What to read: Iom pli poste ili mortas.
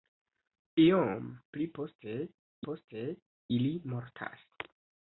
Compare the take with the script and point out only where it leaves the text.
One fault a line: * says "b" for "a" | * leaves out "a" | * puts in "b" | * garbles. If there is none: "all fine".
* puts in "poste"